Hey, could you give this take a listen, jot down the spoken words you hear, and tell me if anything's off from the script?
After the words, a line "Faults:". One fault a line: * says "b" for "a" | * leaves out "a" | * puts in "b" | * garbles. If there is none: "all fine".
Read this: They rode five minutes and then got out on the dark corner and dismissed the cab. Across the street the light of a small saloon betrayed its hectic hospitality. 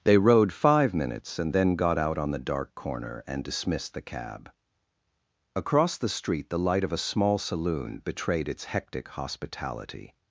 They rode five minutes and then got out on the dark corner and dismissed the cab. Across the street the light of a small saloon betrayed its hectic hospitality.
Faults:
all fine